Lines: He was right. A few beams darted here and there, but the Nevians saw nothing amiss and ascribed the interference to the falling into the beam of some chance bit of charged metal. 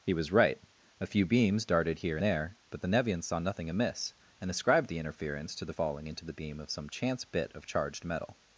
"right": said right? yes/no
yes